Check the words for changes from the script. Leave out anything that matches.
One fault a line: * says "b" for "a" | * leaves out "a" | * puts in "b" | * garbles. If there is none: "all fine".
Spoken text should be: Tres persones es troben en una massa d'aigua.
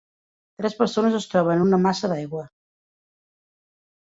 all fine